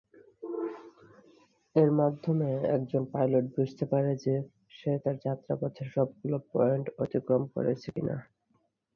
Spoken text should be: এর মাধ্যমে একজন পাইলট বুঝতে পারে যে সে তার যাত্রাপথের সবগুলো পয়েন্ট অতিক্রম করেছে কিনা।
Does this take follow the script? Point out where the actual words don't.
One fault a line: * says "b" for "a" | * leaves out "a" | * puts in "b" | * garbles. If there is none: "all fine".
all fine